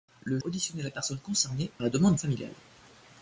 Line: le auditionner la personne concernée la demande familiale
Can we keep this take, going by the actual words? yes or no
yes